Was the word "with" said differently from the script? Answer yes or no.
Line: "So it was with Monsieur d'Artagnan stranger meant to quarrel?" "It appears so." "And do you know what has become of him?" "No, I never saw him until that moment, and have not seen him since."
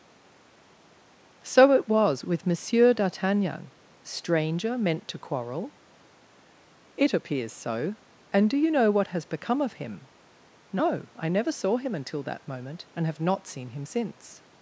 no